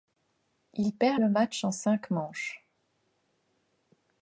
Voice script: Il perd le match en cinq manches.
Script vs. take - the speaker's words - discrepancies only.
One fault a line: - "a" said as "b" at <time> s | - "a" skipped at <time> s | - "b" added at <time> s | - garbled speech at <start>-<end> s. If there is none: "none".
none